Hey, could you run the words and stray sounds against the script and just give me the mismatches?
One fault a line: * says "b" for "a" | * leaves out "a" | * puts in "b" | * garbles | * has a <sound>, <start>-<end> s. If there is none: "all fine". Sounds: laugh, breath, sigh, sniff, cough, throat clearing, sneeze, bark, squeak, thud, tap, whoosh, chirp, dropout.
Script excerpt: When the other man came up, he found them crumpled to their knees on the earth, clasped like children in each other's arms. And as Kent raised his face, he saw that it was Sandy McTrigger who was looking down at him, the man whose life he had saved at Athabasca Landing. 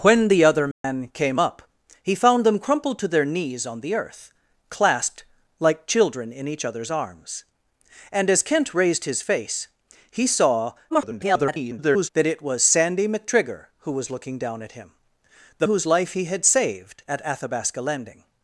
* has a dropout, 0.7-0.8 s
* garbles
* leaves out "man"